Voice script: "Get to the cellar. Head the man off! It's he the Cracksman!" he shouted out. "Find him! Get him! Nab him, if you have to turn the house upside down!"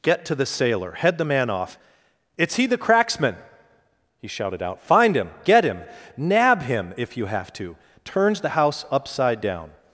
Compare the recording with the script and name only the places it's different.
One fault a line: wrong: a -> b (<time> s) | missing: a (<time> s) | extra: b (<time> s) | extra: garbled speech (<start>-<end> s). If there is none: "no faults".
wrong: cellar -> sailor (0.5 s)
wrong: turn -> turns (8.0 s)